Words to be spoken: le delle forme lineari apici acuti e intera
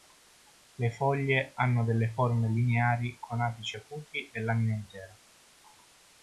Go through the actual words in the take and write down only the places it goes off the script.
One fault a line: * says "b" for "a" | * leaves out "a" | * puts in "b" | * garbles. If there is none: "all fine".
* puts in "foglie hanno"
* puts in "con"
* puts in "lamina"